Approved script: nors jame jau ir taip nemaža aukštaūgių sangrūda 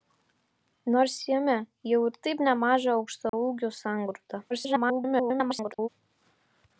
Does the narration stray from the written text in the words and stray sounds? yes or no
yes